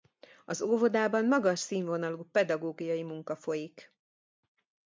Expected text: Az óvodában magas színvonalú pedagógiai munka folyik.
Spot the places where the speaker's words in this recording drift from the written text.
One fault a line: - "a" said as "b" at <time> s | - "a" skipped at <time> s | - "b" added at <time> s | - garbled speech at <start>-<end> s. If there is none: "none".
none